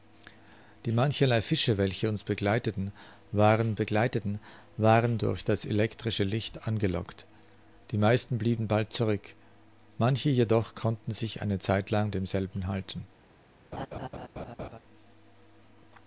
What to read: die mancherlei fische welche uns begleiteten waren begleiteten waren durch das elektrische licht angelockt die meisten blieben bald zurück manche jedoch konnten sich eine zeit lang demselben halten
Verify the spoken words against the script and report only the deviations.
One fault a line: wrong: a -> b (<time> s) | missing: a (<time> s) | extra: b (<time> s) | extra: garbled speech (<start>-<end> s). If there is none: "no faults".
no faults